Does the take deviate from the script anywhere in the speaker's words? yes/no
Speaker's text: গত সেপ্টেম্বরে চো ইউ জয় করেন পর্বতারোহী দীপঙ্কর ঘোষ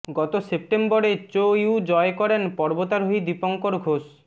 no